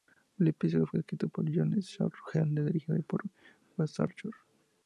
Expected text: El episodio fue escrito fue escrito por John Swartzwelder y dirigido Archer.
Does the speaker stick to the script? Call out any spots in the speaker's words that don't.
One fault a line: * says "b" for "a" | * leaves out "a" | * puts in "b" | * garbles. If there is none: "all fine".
* leaves out "fue escrito"
* puts in "por Wes"